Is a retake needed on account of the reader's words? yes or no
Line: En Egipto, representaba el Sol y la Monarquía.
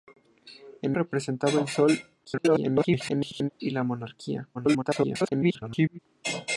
yes